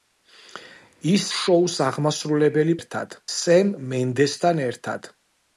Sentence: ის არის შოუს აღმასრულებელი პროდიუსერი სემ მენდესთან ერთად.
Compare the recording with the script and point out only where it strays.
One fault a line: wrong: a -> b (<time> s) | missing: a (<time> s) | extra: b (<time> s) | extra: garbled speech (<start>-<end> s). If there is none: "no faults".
missing: არის (1.2 s)
wrong: პროდიუსერი -> ერთად (2.8 s)